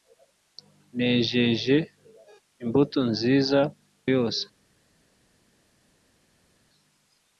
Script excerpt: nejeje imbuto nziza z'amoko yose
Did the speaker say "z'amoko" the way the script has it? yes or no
no